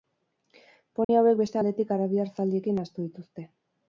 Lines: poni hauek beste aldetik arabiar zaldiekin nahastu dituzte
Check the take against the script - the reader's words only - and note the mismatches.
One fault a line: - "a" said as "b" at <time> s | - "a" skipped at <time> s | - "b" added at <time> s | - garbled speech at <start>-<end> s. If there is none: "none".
none